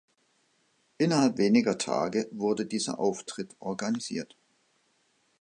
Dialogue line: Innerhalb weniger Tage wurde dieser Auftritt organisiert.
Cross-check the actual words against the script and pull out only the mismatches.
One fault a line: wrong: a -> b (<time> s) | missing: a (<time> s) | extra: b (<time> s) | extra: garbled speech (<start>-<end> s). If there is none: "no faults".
no faults